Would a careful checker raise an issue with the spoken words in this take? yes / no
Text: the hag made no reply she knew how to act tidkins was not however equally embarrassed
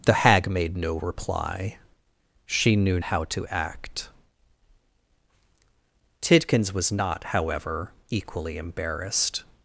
no